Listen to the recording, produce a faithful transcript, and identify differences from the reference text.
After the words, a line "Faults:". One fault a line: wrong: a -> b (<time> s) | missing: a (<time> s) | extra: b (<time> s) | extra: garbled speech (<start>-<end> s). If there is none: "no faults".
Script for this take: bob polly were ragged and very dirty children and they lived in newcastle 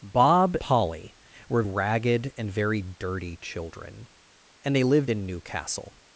bob polly were ragged and very dirty children and they lived in newcastle
Faults:
no faults